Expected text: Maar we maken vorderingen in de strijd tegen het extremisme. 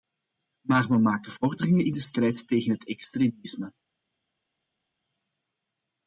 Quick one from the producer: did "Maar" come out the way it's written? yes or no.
yes